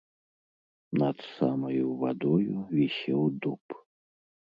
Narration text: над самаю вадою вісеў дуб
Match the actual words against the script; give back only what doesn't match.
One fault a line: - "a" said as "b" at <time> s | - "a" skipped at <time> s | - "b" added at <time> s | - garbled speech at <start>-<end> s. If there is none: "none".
none